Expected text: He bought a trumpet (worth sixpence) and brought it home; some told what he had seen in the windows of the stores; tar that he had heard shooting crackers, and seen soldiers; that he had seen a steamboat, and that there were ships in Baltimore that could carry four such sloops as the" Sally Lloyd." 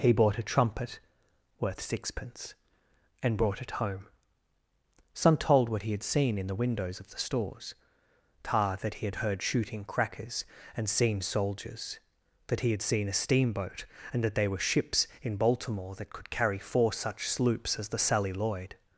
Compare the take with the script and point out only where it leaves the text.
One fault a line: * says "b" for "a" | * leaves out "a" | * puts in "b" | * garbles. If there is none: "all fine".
all fine